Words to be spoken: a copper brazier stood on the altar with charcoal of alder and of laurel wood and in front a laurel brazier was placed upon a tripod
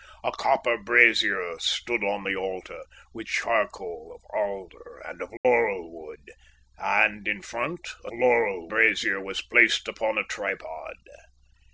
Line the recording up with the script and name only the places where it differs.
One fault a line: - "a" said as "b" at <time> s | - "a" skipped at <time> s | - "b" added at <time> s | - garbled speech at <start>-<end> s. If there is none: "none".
none